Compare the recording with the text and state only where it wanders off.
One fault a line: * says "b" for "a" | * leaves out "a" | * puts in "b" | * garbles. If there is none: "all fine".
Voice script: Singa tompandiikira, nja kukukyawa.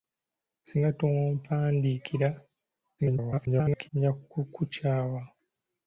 * garbles